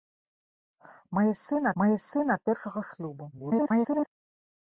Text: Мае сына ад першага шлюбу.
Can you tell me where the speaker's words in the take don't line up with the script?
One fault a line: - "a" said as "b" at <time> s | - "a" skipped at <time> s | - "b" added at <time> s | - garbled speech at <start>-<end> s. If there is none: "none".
- "мае сына" added at 1.8 s
- garbled speech at 3.3-4.1 s